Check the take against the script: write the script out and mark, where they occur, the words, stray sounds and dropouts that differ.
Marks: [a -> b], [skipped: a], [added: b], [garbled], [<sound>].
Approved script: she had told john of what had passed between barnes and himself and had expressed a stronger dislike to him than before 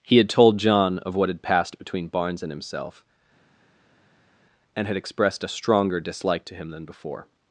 [she -> he] had told john of what had passed between barnes and himself and had expressed a stronger dislike to him than before